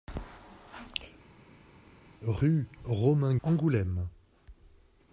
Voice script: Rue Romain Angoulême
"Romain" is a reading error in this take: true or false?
false